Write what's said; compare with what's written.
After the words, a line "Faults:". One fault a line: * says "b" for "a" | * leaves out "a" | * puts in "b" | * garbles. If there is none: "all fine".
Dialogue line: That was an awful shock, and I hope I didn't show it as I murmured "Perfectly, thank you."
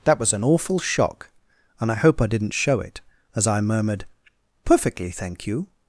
That was an awful shock, and I hope I didn't show it as I murmured "Perfectly, thank you."
Faults:
all fine